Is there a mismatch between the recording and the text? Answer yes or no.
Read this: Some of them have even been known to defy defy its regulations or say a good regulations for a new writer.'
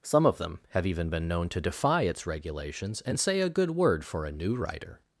yes